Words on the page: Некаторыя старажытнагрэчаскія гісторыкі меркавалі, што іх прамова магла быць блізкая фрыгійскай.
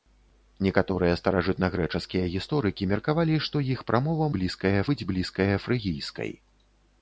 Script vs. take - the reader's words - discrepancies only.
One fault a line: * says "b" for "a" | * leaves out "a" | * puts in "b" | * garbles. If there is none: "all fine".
* says "блізкая" for "магла"